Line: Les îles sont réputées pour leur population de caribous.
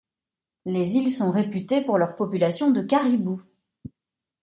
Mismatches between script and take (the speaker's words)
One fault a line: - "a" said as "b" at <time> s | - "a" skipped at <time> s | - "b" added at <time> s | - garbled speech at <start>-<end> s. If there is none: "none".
none